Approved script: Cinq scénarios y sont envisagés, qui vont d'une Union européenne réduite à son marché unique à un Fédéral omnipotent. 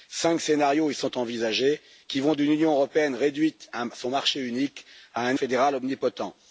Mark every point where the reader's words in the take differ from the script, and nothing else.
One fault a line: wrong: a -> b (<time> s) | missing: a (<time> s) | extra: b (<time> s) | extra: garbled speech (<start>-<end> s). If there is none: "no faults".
no faults